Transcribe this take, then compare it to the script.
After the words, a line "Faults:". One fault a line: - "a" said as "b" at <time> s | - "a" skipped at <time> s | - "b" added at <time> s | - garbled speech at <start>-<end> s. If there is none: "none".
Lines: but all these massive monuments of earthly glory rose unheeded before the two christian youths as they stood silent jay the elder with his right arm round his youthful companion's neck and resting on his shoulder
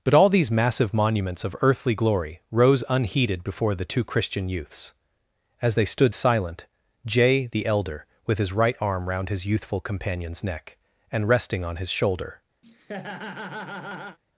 but all these massive monuments of earthly glory rose unheeded before the two christian youths as they stood silent jay the elder with his right arm round his youthful companion's neck and resting on his shoulder
Faults:
none